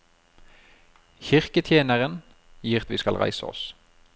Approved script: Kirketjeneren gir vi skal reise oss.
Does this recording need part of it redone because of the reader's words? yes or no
no